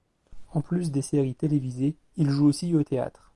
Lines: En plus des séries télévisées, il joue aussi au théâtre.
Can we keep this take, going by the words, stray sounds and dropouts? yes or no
yes